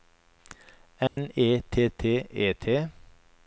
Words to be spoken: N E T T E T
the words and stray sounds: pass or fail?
fail